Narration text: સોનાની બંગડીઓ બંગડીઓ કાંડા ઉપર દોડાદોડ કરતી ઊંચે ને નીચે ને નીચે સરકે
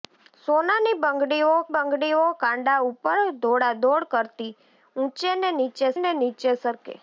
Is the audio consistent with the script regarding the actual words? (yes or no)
yes